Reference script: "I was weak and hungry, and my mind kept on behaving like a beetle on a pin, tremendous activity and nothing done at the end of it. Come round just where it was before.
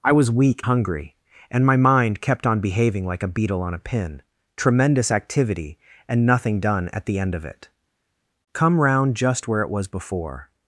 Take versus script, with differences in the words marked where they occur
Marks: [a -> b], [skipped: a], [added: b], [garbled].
"I was weak [skipped: and] hungry, and my mind kept on behaving like a beetle on a pin, tremendous activity and nothing done at the end of it. Come round just where it was before.